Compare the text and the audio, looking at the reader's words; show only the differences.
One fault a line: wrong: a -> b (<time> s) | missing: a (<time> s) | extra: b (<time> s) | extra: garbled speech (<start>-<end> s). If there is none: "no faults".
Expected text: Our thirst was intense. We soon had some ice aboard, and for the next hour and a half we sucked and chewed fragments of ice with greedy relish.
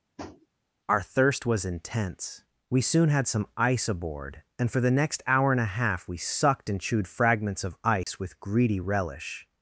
no faults